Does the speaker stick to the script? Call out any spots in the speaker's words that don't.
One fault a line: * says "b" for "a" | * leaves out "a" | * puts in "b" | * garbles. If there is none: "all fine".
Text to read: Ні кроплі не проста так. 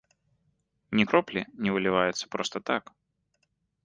* puts in "выліваецца"